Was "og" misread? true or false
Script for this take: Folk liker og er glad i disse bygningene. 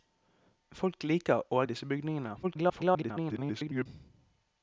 false